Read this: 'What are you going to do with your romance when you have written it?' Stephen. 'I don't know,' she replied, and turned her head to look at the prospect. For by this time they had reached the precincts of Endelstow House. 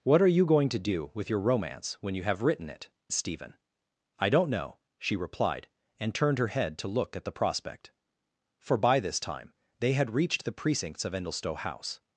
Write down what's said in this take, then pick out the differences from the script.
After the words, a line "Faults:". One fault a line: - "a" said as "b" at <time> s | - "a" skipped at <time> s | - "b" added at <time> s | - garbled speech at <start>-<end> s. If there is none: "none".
'What are you going to do with your romance when you have written it?' Stephen. 'I don't know,' she replied, and turned her head to look at the prospect. For by this time they had reached the precincts of Endelstow House.
Faults:
none